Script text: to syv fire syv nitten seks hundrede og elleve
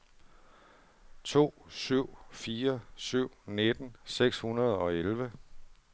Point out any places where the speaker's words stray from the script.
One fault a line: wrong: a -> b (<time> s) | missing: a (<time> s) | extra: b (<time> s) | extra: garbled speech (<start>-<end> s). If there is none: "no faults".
no faults